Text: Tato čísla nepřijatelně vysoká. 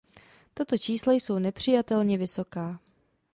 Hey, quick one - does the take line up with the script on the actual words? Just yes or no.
no